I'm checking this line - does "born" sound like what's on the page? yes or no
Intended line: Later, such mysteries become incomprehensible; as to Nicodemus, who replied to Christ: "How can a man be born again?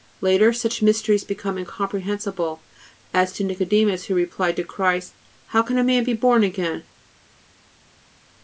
yes